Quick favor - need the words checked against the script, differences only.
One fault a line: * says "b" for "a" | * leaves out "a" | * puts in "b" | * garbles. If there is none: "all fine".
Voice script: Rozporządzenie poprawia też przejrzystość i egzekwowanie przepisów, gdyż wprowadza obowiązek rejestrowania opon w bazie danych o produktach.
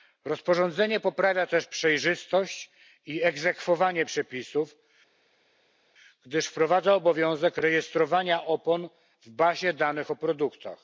all fine